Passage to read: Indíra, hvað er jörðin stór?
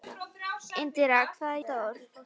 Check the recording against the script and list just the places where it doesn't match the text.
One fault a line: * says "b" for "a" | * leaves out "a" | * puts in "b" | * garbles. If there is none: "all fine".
* leaves out "jörðin"